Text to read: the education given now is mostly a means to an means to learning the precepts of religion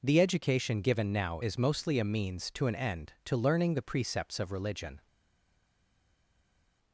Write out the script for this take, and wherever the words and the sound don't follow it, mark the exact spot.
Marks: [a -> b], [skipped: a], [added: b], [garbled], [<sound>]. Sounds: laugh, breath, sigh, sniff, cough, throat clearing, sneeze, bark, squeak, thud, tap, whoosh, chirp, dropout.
the education given now is mostly a means to an [means -> end] to learning the precepts of religion